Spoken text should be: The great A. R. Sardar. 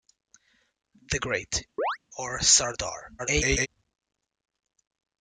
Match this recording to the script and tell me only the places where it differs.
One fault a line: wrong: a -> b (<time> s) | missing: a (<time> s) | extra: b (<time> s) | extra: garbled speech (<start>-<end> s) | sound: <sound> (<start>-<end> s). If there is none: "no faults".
missing: A (1.6 s)
sound: chirp (1.8-2.0 s)
extra: garbled speech (3.2-3.7 s)